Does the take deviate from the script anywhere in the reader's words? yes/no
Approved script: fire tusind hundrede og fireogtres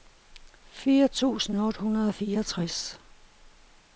yes